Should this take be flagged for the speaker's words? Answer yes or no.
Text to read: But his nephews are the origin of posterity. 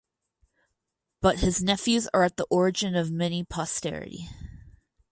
yes